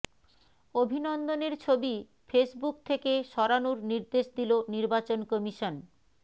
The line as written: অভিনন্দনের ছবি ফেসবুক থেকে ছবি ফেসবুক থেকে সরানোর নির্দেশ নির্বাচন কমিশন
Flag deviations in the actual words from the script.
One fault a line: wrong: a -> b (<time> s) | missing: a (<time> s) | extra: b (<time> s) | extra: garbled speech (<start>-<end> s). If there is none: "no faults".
missing: ছবি ফেসবুক থেকে (3.1 s)
extra: দিল (4.4 s)